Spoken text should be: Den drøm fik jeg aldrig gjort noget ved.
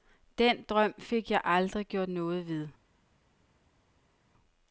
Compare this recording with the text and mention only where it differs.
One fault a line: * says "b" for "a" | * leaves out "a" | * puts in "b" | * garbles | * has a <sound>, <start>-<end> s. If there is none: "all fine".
all fine